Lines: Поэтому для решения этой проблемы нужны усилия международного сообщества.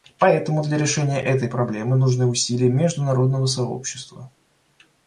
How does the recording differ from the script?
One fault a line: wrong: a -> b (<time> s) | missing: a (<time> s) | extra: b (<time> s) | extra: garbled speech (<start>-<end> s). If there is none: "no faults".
no faults